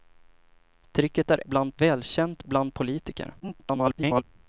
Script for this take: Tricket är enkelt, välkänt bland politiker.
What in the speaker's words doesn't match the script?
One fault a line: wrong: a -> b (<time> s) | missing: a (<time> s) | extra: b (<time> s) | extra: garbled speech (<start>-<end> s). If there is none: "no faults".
wrong: enkelt -> bland (1.4 s)
extra: garbled speech (3.4-4.2 s)